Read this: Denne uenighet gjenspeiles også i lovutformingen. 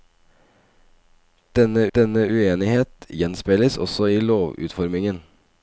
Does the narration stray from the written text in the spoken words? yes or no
yes